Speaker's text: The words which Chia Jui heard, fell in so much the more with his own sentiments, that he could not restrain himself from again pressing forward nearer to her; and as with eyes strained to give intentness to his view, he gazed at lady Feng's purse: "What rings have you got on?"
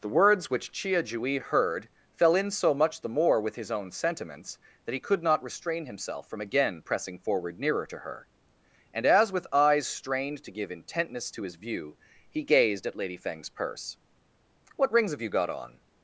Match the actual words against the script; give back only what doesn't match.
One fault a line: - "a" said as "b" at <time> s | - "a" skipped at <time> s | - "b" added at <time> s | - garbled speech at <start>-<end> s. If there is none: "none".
none